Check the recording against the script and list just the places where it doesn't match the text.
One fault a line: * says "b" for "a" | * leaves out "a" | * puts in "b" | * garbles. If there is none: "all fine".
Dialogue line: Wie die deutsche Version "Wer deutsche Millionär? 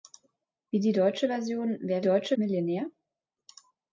all fine